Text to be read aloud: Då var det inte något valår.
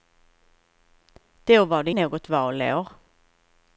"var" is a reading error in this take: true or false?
false